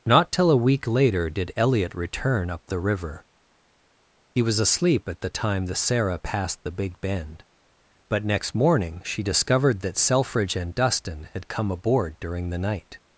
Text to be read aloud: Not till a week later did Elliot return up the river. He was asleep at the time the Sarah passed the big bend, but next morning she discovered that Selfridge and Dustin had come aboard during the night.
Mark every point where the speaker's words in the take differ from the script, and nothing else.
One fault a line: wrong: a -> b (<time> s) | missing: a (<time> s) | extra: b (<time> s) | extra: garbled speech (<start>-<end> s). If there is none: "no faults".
no faults